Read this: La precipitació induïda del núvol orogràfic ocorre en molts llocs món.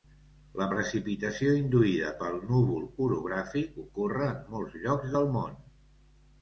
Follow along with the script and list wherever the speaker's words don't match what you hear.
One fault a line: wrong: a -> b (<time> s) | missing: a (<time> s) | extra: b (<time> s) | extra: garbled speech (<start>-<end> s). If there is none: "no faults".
wrong: del -> pel (2.2 s)
extra: del (5.2 s)